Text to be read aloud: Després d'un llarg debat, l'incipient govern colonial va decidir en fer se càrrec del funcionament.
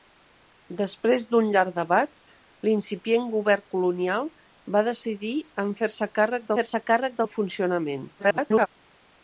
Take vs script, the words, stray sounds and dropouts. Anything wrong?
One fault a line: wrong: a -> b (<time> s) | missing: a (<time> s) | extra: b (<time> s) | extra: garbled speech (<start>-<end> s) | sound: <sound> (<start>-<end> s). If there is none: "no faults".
extra: fer se càrrec (6.6 s)
extra: garbled speech (8.2-8.7 s)